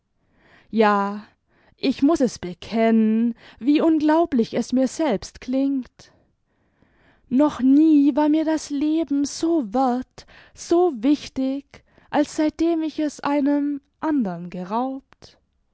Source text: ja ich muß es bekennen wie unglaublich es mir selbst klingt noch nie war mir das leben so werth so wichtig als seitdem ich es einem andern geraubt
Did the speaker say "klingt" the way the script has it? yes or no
yes